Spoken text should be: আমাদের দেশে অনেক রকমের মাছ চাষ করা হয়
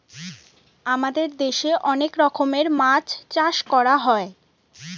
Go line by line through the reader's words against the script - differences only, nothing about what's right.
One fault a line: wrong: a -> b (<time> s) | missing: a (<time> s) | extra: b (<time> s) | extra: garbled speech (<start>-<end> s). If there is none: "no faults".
no faults